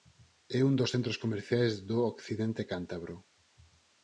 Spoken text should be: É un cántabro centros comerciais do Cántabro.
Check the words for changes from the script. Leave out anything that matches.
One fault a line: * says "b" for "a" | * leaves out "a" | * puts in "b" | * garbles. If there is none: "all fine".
* says "dos" for "cántabro"
* puts in "Occidente"